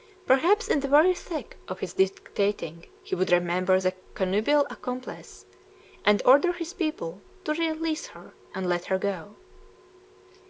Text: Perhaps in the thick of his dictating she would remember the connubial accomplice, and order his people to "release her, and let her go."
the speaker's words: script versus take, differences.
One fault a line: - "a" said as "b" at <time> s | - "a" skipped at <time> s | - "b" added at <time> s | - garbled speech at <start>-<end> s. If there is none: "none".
- "very" added at 0.9 s
- "she" said as "he" at 3.0 s